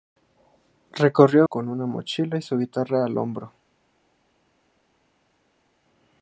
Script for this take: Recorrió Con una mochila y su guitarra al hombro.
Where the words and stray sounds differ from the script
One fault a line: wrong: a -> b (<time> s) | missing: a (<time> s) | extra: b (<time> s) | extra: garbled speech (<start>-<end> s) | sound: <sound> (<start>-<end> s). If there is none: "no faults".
no faults